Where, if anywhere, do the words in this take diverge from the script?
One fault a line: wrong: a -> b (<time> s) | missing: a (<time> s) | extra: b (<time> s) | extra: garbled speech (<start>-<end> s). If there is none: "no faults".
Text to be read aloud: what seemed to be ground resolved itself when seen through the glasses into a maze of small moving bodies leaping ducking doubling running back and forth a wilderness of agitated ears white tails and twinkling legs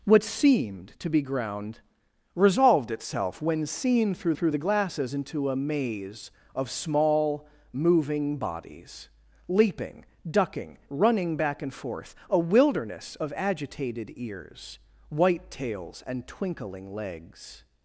extra: through (4.3 s)
missing: doubling (10.8 s)